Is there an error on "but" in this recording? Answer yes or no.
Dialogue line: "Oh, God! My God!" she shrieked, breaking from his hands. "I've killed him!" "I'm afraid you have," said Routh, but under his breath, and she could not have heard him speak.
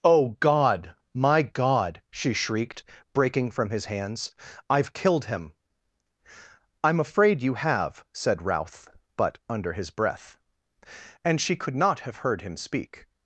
no